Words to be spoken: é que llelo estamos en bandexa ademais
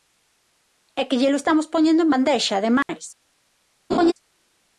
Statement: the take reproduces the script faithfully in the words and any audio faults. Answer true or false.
false